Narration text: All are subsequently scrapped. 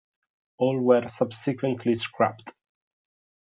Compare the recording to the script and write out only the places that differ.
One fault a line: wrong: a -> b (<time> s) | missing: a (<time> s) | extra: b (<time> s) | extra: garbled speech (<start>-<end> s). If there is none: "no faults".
wrong: are -> were (0.8 s)